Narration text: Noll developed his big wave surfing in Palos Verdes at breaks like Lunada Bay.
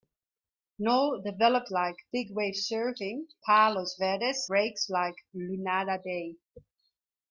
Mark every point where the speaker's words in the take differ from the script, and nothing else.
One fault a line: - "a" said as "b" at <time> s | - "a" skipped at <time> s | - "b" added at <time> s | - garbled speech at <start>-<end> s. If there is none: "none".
- "his" said as "like" at 1.7 s
- "in" skipped at 3.3 s
- "at" skipped at 4.4 s